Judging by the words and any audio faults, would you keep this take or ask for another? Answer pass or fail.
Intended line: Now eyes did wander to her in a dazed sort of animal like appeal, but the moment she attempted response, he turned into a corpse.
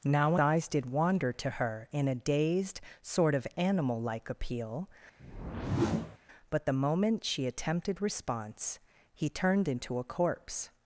fail